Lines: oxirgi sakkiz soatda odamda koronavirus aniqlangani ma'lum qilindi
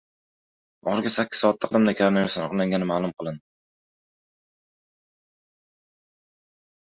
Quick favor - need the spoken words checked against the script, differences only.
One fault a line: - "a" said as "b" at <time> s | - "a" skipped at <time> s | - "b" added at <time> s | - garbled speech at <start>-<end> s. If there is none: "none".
none